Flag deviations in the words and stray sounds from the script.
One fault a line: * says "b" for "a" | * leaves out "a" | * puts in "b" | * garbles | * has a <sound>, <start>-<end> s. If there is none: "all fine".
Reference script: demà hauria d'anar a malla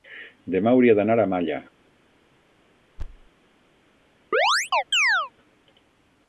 * has a thud, 3.0-3.3 s
* has a chirp, 4.3-5.3 s